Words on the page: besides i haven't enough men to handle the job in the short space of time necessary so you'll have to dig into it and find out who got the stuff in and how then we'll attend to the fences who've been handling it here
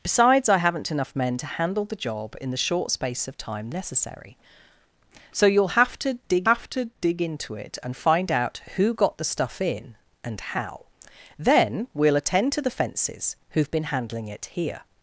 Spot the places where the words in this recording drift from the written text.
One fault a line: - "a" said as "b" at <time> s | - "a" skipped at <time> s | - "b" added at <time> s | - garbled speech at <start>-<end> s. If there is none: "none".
- "have to dig" added at 6.5 s